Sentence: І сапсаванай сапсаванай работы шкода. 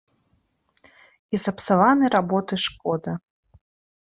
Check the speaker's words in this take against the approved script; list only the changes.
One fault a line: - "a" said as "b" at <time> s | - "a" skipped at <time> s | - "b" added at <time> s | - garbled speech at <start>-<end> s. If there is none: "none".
- "сапсаванай" skipped at 2.1 s